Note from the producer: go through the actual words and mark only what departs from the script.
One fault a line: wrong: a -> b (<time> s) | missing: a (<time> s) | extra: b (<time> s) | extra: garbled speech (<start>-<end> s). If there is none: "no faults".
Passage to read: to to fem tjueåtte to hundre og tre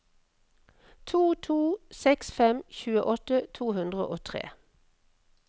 extra: seks (2.0 s)